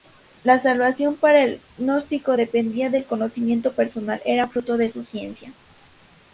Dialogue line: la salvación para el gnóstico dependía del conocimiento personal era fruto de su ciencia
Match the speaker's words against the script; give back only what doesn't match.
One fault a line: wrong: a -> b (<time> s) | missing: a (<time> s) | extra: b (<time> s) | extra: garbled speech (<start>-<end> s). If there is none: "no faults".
no faults